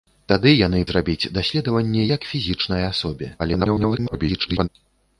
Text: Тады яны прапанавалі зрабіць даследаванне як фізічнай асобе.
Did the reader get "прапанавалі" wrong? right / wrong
wrong